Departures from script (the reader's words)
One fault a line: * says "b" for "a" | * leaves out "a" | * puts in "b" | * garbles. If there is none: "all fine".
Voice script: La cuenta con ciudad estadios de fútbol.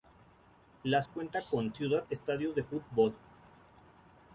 all fine